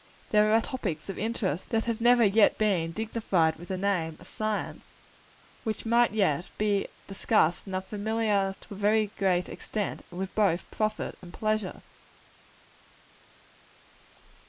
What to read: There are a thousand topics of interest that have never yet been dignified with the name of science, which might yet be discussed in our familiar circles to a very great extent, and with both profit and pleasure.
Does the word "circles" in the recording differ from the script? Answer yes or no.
yes